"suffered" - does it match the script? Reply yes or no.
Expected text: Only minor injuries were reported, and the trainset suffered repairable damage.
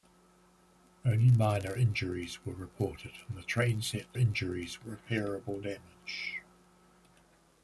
no